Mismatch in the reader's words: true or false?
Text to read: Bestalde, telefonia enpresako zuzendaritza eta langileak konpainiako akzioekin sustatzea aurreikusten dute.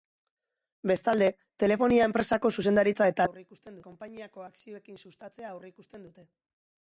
true